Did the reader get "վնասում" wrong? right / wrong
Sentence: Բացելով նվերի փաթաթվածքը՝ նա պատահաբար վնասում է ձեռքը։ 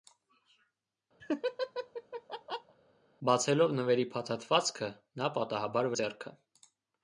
wrong